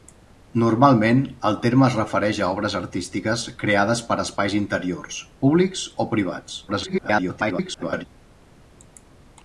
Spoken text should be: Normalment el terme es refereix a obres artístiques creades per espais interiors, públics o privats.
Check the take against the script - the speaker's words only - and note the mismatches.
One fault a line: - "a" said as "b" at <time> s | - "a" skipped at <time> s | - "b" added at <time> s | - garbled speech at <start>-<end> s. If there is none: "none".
- garbled speech at 6.7-8.0 s